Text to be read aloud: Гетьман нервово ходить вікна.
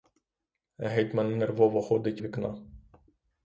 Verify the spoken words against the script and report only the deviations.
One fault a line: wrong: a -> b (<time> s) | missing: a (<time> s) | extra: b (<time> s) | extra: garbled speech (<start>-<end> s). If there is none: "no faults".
no faults